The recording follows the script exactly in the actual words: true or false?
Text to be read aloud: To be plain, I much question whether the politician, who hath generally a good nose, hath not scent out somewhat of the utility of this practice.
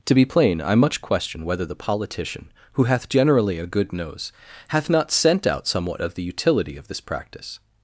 true